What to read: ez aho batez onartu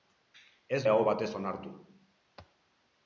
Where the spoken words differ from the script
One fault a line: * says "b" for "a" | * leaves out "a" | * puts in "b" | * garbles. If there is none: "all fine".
all fine